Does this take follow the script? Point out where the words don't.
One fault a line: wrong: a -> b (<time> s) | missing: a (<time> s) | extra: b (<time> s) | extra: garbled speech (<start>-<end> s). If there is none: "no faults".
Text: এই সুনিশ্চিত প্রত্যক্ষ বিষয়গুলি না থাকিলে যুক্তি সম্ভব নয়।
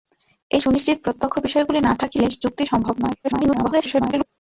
extra: garbled speech (3.2-4.3 s)